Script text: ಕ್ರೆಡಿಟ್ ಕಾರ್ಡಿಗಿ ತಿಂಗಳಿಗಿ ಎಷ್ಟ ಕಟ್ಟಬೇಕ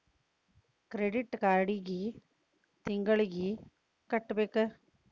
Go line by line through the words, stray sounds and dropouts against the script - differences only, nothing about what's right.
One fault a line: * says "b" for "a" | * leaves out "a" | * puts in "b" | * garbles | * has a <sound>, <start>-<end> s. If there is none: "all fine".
* leaves out "ಎಷ್ಟ"